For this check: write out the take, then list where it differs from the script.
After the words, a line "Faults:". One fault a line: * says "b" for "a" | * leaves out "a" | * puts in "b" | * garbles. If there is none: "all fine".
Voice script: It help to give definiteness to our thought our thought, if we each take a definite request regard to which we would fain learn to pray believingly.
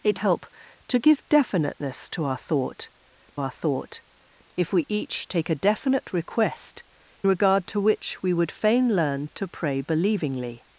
It help to give definiteness to our thought our thought, if we each take a definite request regard to which we would fain learn to pray believingly.
Faults:
all fine